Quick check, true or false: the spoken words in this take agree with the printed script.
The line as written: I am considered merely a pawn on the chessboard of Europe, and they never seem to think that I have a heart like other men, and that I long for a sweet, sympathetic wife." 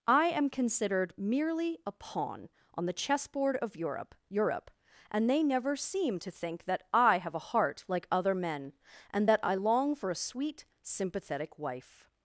false